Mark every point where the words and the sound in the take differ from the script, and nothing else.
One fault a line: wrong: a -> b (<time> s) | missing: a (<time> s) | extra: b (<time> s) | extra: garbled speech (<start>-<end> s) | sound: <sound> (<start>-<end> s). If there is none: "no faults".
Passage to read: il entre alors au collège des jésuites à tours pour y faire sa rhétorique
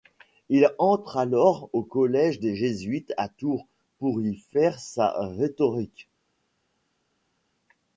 no faults